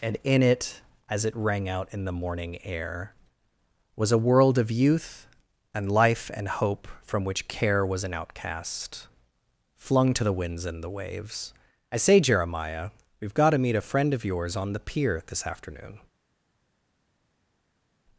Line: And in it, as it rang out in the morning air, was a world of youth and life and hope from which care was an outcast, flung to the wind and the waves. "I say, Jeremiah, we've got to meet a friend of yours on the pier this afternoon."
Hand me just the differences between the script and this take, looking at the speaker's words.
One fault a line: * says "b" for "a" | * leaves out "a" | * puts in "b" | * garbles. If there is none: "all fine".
* says "winds" for "wind"